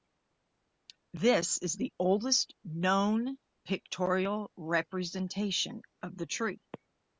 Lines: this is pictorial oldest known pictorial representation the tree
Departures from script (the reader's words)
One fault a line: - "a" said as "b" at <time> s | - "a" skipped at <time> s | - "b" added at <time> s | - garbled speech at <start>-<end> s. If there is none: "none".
- "pictorial" said as "the" at 1.8 s
- "of" added at 6.0 s